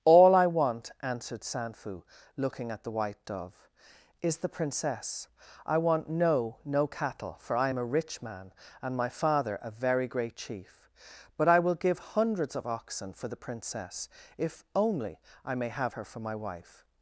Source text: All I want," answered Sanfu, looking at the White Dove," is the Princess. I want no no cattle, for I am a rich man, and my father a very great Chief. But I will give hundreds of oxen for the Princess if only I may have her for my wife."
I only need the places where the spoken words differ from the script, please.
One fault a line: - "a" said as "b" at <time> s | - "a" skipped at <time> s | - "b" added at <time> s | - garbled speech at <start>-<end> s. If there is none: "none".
none